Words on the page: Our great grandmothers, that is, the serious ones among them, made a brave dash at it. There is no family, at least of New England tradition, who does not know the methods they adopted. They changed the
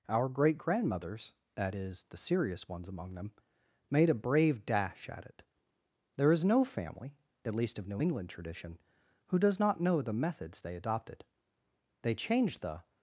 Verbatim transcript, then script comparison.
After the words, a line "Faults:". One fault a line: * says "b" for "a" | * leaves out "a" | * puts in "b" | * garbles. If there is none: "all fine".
Our great grandmothers, that is, the serious ones among them, made a brave dash at it. There is no family, at least of New England tradition, who does not know the methods they adopted. They changed the
Faults:
all fine